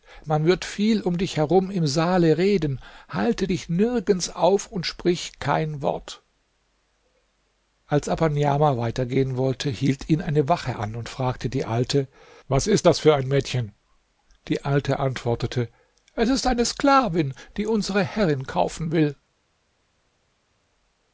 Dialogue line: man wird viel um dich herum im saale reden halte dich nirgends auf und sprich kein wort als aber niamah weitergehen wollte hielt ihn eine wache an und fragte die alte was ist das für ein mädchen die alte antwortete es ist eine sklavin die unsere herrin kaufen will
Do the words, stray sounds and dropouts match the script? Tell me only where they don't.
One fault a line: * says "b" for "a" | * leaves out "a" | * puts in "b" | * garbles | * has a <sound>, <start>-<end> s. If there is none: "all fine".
all fine